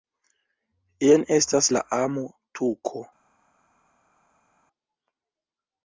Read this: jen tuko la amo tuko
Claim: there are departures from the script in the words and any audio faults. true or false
true